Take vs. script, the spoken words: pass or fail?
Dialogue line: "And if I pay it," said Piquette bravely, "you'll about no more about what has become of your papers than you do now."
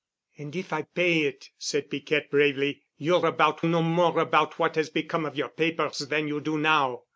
pass